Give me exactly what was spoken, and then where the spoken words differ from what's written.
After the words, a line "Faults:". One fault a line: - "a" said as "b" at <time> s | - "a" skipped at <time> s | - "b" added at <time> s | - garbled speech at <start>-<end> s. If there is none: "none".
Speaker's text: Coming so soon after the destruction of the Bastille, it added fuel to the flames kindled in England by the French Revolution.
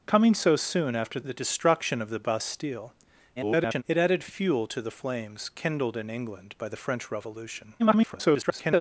Coming so soon after the destruction of the Bastille, [garbled] it added fuel to the flames kindled in England by the French Revolution. [garbled]
Faults:
- garbled speech at 3.4-3.8 s
- garbled speech at 7.8-8.8 s